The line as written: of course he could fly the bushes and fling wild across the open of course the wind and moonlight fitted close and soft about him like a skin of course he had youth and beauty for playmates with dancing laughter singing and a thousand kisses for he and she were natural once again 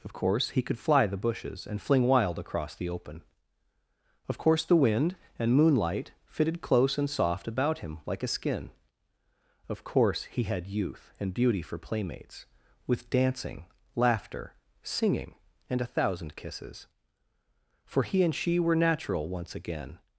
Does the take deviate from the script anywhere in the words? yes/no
no